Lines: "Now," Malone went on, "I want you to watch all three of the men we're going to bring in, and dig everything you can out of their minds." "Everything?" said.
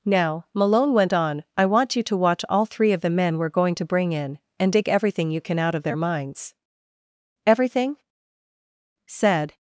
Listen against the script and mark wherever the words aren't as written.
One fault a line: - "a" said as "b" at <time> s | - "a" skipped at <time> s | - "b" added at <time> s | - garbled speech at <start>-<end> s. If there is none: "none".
none